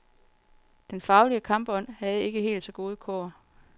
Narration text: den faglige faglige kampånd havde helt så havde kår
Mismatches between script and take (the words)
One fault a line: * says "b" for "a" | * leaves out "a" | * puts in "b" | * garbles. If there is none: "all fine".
* leaves out "faglige"
* puts in "ikke"
* says "gode" for "havde"